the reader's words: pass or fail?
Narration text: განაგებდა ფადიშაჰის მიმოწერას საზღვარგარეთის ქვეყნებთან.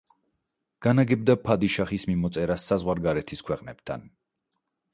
pass